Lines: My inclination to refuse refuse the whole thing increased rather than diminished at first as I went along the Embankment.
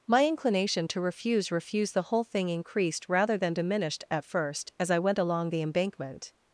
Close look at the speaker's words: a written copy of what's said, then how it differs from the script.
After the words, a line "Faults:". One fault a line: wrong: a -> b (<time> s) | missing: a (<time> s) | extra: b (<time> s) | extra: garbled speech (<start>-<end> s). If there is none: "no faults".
My inclination to refuse refuse the whole thing increased rather than diminished at first as I went along the Embankment.
Faults:
no faults